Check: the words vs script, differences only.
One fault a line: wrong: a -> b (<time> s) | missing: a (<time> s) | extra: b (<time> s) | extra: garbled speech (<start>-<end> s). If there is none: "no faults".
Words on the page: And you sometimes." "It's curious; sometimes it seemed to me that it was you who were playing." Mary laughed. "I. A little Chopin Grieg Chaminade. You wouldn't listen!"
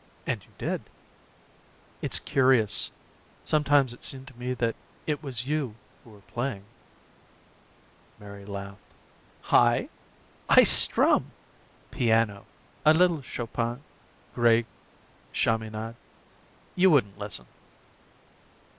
wrong: sometimes -> did (0.6 s)
extra: I strum Piano (10.5 s)